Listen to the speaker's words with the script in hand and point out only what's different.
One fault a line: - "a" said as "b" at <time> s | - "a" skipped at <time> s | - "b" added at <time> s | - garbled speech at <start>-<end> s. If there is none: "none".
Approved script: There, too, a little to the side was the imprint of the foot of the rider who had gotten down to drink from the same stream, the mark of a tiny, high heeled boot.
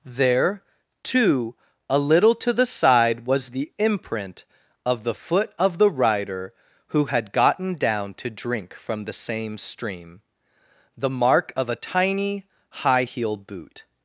- "heeled" said as "heel" at 13.0 s